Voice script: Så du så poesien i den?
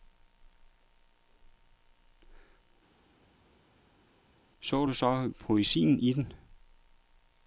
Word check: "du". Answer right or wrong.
right